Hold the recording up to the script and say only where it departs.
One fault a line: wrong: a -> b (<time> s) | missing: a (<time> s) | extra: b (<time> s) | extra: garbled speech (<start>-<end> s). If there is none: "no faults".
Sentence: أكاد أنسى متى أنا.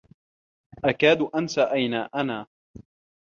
wrong: متى -> أين (1.6 s)